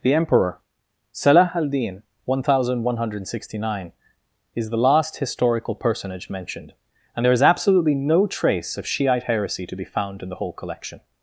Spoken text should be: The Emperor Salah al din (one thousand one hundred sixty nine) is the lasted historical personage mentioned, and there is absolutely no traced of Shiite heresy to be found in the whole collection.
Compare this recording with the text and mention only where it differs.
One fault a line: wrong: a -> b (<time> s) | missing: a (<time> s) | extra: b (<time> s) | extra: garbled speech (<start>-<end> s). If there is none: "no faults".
wrong: lasted -> last (4.8 s)
wrong: traced -> trace (8.2 s)